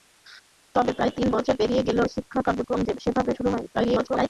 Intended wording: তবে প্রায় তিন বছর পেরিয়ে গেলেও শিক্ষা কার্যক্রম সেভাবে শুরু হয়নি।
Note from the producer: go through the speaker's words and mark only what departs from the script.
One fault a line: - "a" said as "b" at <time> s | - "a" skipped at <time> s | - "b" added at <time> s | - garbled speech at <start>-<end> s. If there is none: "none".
- garbled speech at 3.7-4.3 s